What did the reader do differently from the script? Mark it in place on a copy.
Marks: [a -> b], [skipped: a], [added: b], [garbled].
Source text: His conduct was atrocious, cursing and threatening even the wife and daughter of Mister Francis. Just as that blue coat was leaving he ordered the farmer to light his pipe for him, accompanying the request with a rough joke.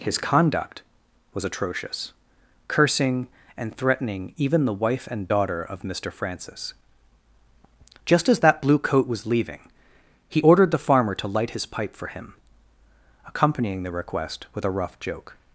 His conduct was atrocious, cursing and threatening even the wife and daughter of Mister Francis. Just as that blue coat was leaving he ordered the farmer to light his pipe for him, accompanying the request with a rough joke.